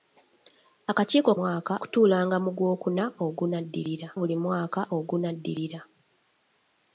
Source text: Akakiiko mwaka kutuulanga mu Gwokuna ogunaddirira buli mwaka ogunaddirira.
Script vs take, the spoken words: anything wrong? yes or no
no